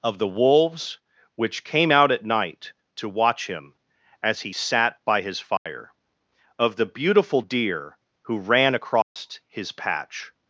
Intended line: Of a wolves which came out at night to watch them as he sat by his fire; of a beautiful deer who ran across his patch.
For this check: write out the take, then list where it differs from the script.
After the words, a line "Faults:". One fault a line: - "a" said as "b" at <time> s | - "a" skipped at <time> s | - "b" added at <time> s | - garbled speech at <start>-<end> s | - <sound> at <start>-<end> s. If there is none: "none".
Of the wolves which came out at night to watch him as he sat by his fire; of the beautiful deer who ran across his patch.
Faults:
- "a" said as "the" at 0.2 s
- "them" said as "him" at 3.5 s
- dropout at 5.6-5.7 s
- "a" said as "the" at 6.8 s
- dropout at 9.0-9.2 s